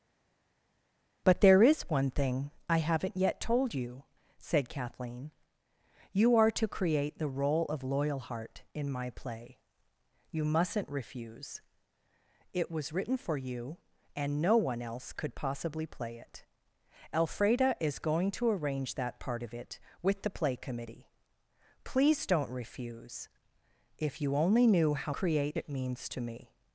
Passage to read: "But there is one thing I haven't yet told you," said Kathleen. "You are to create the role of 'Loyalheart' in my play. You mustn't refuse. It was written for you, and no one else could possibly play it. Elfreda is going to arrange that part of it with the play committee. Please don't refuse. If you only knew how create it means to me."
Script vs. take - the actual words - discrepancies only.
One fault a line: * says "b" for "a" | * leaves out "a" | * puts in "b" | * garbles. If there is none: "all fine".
all fine